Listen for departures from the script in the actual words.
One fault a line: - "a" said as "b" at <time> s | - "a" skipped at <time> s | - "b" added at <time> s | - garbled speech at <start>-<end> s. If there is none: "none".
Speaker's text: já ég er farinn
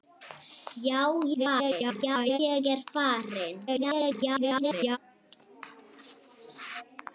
- garbled speech at 1.3-2.4 s
- garbled speech at 3.7-5.0 s